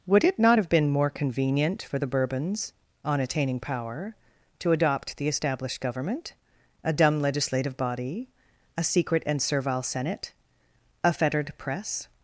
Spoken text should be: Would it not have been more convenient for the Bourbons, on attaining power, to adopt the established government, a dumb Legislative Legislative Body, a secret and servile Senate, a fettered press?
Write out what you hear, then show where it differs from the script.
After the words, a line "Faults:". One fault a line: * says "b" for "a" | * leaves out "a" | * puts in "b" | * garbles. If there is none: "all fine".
Would it not have been more convenient for the Bourbons, on attaining power, to adopt the established government, a dumb Legislative Body, a secret and servile Senate, a fettered press?
Faults:
* leaves out "Legislative"